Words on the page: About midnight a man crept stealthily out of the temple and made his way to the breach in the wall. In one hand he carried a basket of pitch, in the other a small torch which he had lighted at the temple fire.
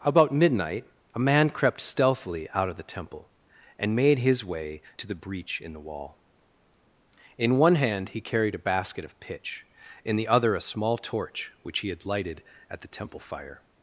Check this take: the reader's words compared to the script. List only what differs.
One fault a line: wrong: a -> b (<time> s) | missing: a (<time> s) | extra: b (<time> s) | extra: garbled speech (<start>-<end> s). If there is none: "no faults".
no faults